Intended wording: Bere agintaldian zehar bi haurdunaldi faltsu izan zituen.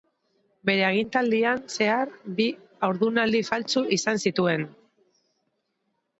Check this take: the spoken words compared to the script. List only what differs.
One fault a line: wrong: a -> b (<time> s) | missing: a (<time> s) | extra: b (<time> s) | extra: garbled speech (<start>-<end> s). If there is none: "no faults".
no faults